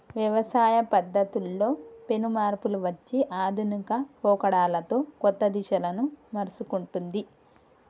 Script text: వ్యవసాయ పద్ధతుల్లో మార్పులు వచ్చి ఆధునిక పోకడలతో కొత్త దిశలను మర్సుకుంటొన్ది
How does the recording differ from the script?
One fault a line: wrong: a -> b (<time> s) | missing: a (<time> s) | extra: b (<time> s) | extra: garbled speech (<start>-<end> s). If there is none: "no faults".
extra: పెను (2.1 s)